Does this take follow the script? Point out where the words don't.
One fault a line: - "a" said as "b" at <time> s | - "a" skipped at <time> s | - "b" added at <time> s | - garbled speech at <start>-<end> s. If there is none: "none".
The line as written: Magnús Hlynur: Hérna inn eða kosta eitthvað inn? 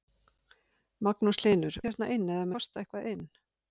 none